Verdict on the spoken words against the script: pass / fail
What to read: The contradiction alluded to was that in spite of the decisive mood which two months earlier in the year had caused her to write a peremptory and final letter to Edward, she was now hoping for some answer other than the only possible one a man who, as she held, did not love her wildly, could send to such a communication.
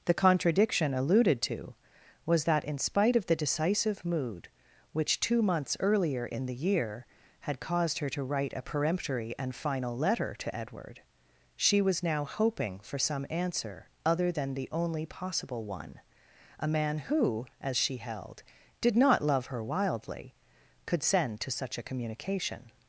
pass